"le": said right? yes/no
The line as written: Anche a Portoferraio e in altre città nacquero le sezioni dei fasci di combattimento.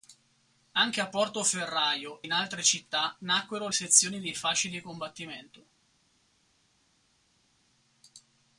no